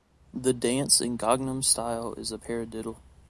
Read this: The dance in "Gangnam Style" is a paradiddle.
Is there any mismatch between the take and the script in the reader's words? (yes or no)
no